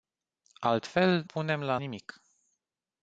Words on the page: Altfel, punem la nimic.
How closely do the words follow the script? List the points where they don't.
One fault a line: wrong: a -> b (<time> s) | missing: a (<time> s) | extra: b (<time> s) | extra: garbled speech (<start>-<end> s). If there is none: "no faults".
no faults